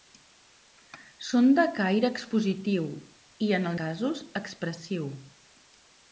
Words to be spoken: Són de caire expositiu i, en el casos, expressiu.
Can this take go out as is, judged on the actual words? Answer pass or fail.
pass